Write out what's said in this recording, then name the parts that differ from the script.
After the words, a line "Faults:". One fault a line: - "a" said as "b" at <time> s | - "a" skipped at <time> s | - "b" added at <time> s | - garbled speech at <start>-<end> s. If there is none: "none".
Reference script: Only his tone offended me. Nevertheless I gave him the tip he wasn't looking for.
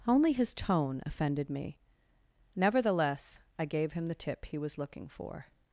Only his tone offended me. Nevertheless I gave him the tip he was looking for.
Faults:
- "wasn't" said as "was" at 4.6 s